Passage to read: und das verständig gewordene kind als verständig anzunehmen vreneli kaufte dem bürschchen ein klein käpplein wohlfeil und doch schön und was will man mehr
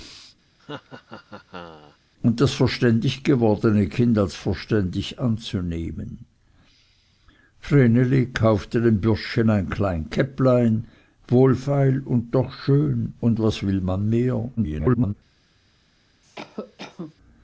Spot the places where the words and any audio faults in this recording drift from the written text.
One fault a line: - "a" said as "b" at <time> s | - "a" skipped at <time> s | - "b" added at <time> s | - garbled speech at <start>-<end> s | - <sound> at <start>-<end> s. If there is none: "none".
- laugh at 0.6-2.0 s
- garbled speech at 14.6-15.1 s
- cough at 16.2-17.1 s